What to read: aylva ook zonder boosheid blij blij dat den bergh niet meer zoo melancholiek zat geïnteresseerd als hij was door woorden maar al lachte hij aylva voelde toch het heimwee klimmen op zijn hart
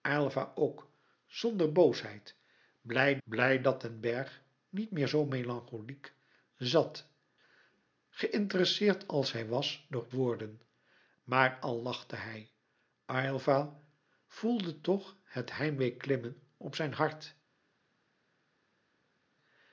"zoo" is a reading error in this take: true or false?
false